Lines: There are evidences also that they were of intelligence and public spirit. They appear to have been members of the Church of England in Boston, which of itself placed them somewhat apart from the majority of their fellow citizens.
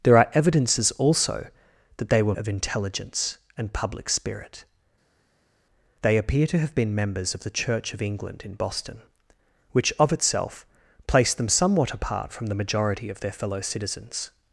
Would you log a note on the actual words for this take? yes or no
no